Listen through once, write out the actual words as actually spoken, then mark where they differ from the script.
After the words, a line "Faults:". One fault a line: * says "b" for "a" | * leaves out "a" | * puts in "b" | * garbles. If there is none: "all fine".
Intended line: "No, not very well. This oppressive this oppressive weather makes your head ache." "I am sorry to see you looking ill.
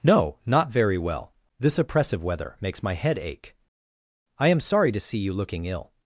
"No, not very well. This oppressive weather makes my head ache." "I am sorry to see you looking ill.
Faults:
* leaves out "this oppressive"
* says "my" for "your"